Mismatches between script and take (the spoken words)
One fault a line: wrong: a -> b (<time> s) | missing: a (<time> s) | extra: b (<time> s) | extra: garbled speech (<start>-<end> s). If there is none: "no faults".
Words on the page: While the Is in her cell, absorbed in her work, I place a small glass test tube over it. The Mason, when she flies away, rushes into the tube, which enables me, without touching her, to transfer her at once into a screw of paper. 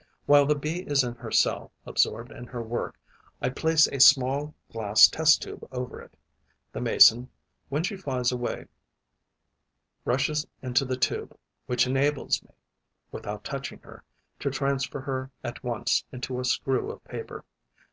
extra: Bee (0.6 s)